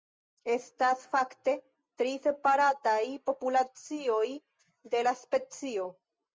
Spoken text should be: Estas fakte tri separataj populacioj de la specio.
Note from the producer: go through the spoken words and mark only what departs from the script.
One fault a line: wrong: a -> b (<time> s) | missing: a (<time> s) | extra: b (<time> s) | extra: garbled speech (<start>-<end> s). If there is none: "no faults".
no faults